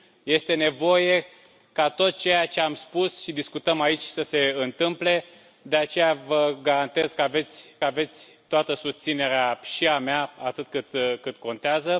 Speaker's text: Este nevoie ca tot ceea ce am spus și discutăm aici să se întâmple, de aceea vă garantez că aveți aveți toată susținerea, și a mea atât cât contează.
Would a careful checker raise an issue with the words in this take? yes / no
no